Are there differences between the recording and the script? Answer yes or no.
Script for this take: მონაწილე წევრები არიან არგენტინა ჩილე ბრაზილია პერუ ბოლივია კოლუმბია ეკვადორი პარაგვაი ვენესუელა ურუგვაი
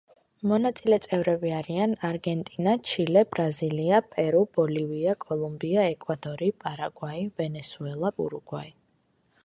no